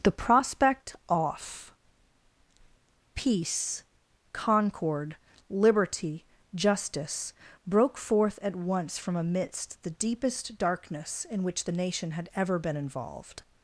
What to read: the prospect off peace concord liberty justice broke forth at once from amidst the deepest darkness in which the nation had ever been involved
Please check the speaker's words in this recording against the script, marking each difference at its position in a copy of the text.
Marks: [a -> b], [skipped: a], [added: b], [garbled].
the prospect off peace concord liberty justice broke forth at once from amidst the deepest darkness in which the nation had ever been involved